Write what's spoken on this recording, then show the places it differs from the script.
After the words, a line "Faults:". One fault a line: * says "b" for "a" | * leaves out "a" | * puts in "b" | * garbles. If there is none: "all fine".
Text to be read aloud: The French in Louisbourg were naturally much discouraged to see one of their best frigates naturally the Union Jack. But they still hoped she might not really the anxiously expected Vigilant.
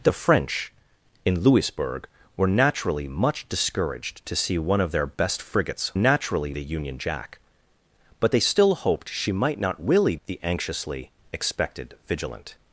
The French in Louisbourg were naturally much discouraged to see one of their best frigates naturally the Union Jack. But they still hoped she might not really the anxiously expected Vigilant.
Faults:
all fine